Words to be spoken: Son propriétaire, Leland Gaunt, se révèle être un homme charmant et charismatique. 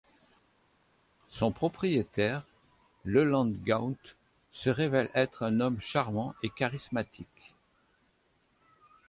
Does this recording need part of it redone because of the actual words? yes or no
no